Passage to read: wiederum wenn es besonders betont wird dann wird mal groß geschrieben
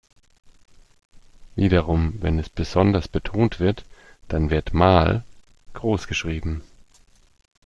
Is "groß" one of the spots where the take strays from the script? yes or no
no